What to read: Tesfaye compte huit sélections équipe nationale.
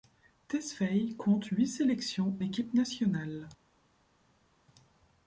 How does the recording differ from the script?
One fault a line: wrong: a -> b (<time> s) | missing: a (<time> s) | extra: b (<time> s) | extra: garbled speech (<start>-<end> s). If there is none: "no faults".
no faults